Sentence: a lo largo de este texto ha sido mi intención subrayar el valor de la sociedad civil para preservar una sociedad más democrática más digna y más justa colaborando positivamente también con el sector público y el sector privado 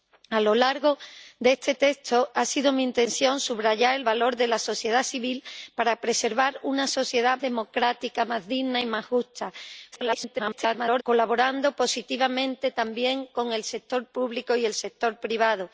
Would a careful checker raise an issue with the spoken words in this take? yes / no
yes